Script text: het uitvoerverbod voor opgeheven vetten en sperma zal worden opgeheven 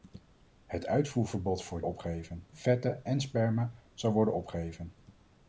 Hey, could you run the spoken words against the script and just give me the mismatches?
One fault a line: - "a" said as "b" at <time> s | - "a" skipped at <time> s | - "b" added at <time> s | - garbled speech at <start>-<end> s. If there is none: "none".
none